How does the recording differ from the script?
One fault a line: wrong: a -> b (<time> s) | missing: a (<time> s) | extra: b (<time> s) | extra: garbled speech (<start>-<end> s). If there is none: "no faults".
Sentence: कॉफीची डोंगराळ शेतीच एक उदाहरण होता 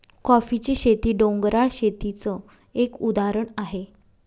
extra: शेती (0.8 s)
wrong: होता -> आहे (3.6 s)